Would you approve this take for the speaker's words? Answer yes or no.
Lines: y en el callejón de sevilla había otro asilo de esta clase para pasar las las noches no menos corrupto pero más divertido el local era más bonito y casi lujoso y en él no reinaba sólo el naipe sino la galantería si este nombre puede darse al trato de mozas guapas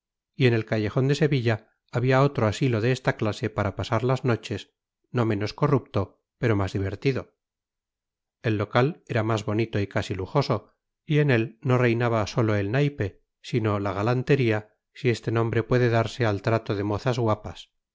no